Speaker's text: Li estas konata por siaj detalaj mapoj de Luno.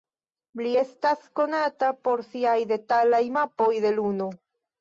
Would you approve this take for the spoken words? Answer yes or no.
yes